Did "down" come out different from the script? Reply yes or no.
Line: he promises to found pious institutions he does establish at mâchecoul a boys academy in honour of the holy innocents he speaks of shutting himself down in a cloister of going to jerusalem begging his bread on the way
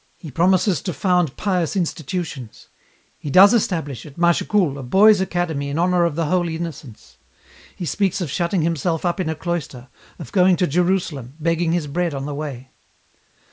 yes